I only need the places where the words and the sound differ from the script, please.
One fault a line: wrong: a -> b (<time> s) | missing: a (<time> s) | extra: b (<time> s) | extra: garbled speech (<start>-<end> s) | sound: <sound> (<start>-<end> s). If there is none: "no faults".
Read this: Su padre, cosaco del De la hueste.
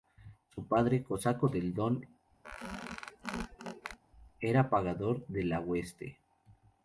extra: Don era pagador (1.8 s)
sound: squeak (2.4-4.0 s)